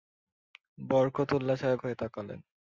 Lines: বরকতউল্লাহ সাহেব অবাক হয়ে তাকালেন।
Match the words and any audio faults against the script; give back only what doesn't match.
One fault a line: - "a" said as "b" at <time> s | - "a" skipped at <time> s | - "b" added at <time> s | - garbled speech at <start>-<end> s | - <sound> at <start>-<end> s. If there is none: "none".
- "অবাক" skipped at 1.8 s